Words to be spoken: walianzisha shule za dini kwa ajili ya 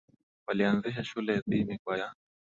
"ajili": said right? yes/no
no